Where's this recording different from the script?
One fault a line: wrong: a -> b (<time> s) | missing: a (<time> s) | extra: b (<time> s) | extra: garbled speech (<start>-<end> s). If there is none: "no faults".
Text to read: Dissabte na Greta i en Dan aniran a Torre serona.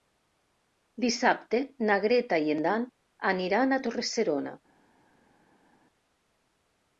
no faults